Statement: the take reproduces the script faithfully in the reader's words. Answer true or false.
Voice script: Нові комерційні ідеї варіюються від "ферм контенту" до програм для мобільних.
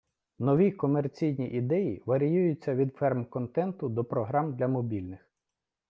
true